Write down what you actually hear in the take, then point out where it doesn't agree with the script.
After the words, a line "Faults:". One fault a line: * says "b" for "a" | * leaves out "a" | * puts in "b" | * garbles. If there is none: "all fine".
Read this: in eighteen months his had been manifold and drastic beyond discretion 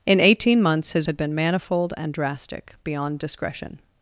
in eighteen months his had been manifold and drastic beyond discretion
Faults:
all fine